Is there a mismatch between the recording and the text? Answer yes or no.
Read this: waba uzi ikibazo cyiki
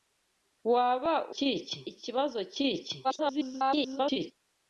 yes